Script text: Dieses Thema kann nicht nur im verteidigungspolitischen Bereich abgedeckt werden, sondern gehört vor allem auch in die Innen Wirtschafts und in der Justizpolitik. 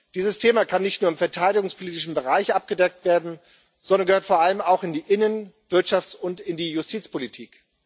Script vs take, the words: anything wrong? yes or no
yes